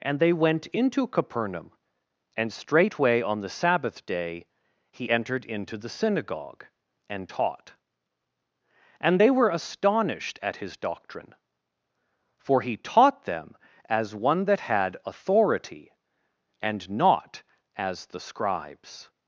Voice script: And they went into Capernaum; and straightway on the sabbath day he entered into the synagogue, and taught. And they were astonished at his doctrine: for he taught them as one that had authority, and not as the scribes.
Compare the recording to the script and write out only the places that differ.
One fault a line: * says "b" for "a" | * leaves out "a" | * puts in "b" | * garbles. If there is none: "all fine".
all fine